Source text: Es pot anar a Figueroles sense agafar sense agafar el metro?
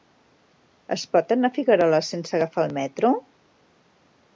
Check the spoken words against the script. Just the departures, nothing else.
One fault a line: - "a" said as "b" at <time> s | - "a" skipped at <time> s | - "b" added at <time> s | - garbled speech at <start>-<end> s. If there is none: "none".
- "sense agafar" skipped at 2.7 s